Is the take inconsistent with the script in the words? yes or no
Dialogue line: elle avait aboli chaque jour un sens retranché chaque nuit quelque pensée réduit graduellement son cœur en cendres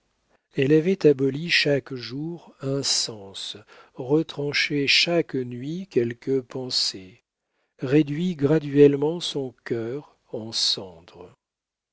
no